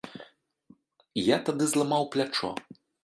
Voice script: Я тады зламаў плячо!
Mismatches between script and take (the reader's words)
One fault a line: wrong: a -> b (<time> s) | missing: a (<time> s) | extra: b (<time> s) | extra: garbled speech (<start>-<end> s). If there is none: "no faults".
no faults